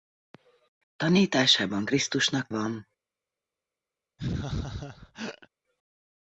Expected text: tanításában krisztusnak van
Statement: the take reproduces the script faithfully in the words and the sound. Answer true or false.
false